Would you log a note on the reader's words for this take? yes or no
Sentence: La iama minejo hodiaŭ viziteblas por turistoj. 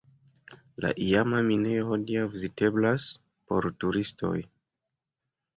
no